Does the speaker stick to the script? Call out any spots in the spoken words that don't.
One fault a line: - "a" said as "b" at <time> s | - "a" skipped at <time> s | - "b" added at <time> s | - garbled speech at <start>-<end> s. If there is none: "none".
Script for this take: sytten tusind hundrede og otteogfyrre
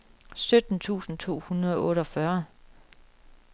- "to" added at 1.2 s